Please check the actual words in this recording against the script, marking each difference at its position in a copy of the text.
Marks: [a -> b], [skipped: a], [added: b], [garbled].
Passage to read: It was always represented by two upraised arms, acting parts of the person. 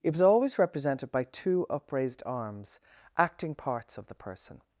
It was always represented by two upraised arms, acting parts of the person.